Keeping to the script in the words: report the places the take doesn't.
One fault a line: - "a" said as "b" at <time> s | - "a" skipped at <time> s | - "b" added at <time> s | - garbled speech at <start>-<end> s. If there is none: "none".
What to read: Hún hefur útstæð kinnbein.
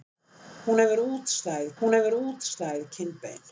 - "hún hefur útstæð" added at 1.8 s